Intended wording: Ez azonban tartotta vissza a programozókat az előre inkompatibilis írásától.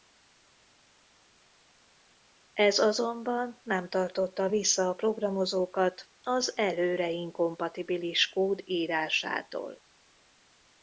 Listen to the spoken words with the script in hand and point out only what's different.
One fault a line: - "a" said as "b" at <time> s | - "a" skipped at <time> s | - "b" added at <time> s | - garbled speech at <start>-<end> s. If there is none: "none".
- "nem" added at 3.6 s
- "kód" added at 8.3 s